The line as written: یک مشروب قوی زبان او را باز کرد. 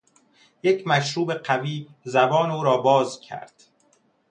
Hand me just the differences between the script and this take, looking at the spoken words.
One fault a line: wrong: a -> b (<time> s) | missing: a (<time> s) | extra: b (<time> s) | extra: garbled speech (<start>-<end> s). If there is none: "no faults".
no faults